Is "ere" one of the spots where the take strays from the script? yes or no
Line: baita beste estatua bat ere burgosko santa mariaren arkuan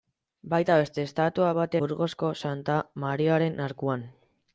yes